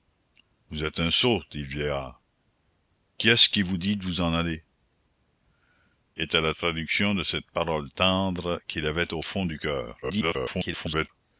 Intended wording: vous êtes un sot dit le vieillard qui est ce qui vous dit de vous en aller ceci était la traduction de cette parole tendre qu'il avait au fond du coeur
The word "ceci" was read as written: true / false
false